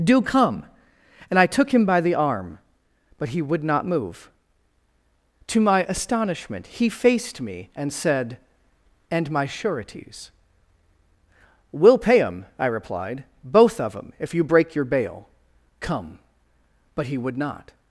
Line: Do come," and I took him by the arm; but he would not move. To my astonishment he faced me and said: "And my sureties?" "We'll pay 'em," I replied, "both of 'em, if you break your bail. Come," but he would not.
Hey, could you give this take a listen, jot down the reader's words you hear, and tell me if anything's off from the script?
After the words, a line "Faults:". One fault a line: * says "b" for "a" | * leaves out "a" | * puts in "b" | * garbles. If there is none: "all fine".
Do come," and I took him by the arm; but he would not move. To my astonishment he faced me and said: "And my sureties?" "We'll pay 'em," I replied, "both of 'em, if you break your bail. Come," but he would not.
Faults:
all fine